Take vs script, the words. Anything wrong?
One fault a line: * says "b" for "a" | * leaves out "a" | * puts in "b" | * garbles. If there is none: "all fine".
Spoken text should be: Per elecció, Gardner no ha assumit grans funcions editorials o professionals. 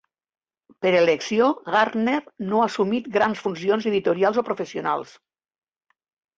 all fine